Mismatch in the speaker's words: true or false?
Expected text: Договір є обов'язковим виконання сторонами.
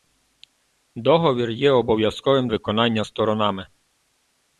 false